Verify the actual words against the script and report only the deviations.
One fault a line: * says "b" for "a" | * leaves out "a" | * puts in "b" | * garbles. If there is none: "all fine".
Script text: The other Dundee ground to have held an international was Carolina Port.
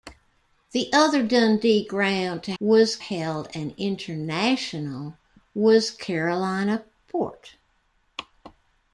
* says "was" for "have"